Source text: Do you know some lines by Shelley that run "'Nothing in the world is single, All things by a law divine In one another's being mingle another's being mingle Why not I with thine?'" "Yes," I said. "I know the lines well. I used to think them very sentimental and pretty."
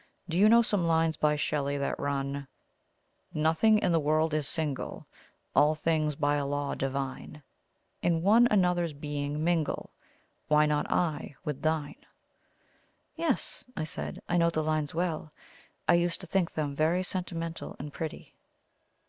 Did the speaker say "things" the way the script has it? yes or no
yes